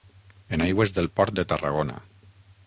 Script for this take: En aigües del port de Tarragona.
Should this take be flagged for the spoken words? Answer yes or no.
no